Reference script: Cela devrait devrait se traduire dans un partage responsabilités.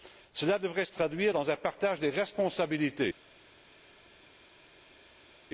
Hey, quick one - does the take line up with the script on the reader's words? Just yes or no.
no